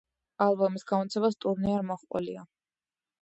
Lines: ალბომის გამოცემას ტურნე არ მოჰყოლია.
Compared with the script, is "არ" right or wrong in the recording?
right